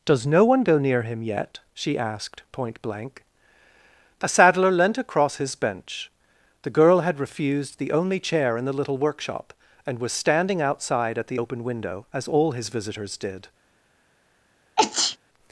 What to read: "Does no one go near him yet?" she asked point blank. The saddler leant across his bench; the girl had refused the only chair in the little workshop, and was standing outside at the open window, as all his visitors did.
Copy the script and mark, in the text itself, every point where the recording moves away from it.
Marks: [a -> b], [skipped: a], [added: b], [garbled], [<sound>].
"Does no one go near him yet?" she asked point blank. [The -> A] saddler leant across his bench; the girl had refused the only chair in the little workshop, and was standing outside at the open window, as all his visitors did. [sneeze]